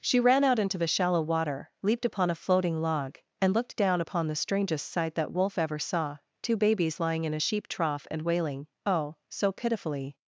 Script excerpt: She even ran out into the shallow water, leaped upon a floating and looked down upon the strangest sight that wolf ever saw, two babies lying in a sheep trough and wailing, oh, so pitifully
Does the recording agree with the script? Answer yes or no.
no